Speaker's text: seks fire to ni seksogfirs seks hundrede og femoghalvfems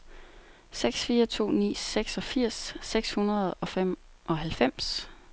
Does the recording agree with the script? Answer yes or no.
yes